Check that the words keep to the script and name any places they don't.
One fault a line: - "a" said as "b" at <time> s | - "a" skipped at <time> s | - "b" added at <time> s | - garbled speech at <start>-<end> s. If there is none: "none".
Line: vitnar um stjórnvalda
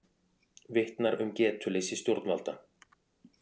- "getuleysi" added at 1.4 s